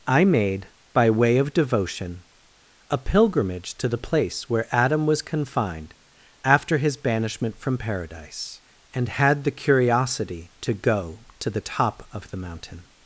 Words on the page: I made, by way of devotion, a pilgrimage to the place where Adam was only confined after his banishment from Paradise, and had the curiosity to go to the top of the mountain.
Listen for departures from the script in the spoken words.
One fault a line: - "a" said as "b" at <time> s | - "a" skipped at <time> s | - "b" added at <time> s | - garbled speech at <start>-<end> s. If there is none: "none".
- "only" skipped at 5.2 s